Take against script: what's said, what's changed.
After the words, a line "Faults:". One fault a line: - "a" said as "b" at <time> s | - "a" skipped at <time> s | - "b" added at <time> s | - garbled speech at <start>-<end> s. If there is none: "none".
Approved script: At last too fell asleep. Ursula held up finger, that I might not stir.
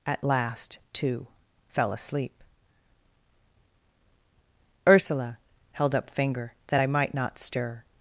At last too fell asleep. Ursula held up finger, that I might not stir.
Faults:
none